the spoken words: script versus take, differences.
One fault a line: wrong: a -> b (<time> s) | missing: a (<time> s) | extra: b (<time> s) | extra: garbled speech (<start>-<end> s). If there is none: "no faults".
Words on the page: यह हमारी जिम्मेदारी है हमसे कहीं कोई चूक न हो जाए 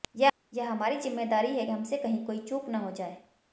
no faults